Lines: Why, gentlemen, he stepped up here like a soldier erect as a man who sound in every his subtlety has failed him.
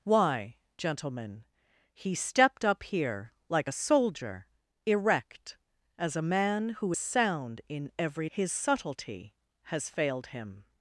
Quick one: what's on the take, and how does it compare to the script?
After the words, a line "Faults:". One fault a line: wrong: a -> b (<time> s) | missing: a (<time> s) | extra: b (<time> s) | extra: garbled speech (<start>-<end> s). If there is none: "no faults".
Why, gentlemen, he stepped up here like a soldier erect as a man who sound in every his subtlety has failed him.
Faults:
no faults